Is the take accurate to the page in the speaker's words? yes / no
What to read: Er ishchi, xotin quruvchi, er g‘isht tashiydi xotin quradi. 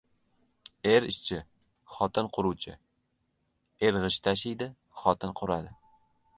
yes